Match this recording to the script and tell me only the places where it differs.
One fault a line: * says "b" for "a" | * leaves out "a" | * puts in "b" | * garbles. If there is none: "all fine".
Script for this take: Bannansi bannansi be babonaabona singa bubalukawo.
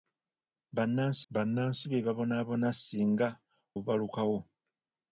all fine